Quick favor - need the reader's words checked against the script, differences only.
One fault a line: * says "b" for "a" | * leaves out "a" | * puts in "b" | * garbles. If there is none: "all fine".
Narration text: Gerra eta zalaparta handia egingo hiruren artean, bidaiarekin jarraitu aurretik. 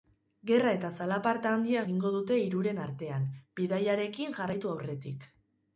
* puts in "dute"